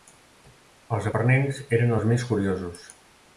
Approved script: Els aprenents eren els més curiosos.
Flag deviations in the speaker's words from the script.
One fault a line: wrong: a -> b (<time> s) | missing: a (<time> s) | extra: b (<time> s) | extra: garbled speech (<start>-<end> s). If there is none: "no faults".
no faults